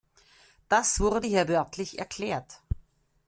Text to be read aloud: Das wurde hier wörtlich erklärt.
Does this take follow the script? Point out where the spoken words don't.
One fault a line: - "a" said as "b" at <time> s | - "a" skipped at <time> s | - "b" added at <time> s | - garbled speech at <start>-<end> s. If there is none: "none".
none